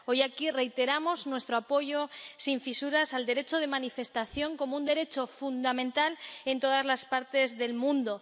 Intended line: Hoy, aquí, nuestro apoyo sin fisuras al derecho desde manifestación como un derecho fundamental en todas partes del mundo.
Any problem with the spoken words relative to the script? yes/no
yes